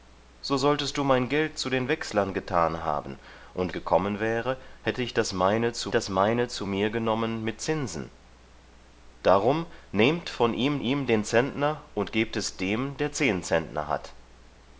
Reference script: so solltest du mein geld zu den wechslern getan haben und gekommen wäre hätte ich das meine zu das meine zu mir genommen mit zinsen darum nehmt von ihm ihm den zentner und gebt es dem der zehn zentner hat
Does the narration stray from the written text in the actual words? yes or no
no